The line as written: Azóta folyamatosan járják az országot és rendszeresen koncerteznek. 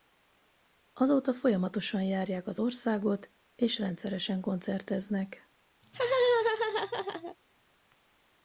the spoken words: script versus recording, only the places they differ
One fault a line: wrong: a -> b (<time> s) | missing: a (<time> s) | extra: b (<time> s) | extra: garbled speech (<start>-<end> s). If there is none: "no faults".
no faults